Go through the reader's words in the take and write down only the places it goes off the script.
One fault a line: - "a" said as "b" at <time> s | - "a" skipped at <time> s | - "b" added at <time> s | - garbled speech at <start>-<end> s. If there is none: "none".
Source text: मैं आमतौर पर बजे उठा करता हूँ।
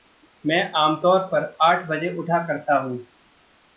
- "आठ" added at 1.6 s